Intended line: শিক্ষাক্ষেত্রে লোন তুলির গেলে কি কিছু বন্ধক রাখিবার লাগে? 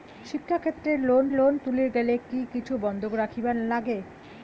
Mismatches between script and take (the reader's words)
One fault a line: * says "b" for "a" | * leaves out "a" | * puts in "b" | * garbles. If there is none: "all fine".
* puts in "লোন"